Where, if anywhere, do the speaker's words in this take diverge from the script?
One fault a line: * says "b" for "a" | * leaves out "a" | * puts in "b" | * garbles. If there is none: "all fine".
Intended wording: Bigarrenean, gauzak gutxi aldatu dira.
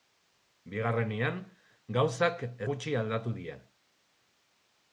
all fine